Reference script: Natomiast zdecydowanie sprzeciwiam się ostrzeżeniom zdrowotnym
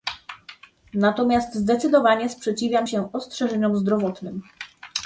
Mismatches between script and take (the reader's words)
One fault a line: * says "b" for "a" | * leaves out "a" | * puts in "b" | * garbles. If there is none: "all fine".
all fine